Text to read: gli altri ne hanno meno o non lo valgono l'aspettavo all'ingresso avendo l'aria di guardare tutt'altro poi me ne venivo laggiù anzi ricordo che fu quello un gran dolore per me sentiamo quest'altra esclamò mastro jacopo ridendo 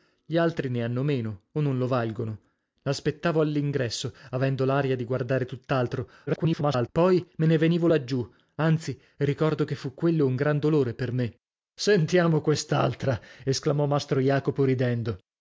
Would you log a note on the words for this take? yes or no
yes